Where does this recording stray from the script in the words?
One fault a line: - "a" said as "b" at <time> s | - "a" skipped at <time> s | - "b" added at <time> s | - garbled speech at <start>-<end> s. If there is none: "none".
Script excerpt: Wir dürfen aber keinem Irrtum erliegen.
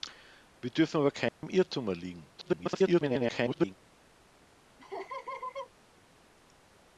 - garbled speech at 2.4-3.7 s